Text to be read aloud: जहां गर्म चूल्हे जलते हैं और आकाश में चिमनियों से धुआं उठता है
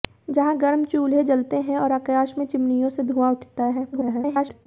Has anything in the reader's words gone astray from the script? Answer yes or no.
yes